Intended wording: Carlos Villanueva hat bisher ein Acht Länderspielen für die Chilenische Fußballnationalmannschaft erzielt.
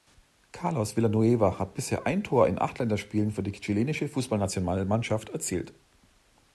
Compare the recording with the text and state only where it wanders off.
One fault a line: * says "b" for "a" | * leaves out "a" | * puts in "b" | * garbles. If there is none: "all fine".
* puts in "Tor in"